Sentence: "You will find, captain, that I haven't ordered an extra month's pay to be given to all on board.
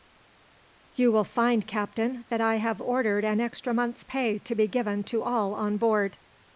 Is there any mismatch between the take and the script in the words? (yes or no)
yes